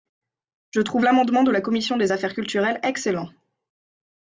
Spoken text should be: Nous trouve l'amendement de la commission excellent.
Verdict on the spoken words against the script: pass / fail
fail